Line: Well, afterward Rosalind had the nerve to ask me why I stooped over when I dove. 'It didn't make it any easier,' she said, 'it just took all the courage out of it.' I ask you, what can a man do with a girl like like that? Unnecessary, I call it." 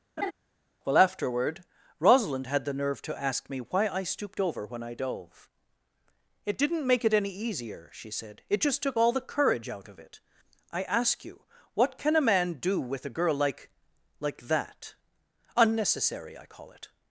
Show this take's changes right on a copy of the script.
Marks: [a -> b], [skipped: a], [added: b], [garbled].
Well, afterward Rosalind had the nerve to ask me why I stooped over when I dove. 'It didn't make it any easier,' she said, 'it just took all the courage out of it.' I ask you, what can a man do with a girl like like that? Unnecessary, I call it."